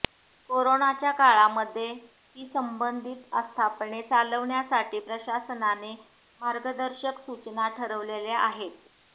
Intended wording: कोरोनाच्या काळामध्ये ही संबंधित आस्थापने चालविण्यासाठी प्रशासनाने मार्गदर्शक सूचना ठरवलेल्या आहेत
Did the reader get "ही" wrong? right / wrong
right